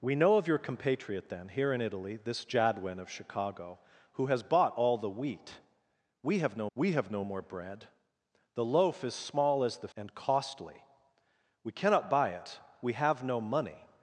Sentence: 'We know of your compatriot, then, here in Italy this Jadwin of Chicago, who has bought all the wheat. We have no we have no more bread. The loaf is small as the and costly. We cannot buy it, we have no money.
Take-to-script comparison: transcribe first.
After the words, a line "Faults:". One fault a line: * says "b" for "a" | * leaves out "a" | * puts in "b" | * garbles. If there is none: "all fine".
'We know of your compatriot, then, here in Italy this Jadwin of Chicago, who has bought all the wheat. We have no we have no more bread. The loaf is small as the and costly. We cannot buy it, we have no money.
Faults:
all fine